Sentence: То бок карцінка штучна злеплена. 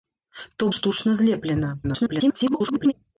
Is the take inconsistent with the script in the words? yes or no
yes